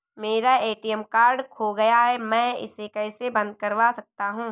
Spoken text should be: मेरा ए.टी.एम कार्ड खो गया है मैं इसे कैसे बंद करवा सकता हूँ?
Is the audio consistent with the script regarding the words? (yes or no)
yes